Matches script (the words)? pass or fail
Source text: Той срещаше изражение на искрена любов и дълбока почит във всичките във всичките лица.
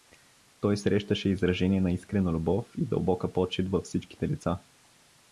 fail